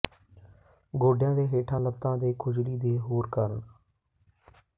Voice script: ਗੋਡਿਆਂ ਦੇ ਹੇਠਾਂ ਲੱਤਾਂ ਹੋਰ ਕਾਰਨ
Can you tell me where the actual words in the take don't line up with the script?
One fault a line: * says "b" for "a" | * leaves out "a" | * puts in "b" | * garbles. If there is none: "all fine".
* puts in "ਦੇ ਖੁਜਲੀ ਦੇ"